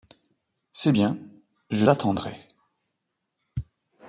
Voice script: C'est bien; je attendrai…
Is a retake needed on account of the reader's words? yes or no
no